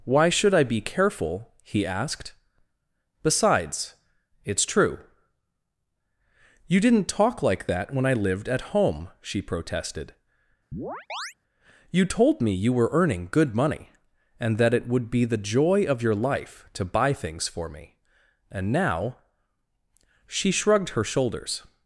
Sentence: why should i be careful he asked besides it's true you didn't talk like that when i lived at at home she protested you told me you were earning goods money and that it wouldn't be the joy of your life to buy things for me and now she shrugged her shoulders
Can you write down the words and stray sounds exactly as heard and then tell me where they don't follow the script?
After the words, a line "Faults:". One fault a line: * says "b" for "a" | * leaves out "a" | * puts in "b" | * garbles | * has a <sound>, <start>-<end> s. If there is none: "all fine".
why should i be careful he asked besides it's true you didn't talk like that when i lived at home she protested you told me you were earning good money and that it would be the joy of your life to buy things for me and now she shrugged her shoulders
Faults:
* leaves out "at"
* has a chirp, 10.7-11.3 s
* says "good" for "goods"
* says "would" for "wouldn't"